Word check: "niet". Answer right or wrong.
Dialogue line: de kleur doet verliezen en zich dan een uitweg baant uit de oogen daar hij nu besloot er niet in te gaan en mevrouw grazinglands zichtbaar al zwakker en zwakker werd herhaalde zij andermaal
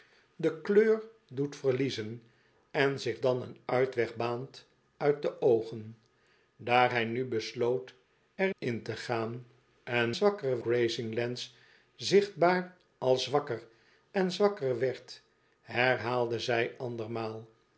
wrong